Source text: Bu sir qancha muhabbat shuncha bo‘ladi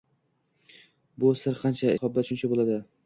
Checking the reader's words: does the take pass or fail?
pass